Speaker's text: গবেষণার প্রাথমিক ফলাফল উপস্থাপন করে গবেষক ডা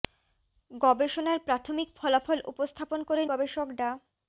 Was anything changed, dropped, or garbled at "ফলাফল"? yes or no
no